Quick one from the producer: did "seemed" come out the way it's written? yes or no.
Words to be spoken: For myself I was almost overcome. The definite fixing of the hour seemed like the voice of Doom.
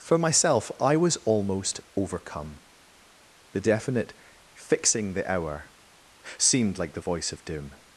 yes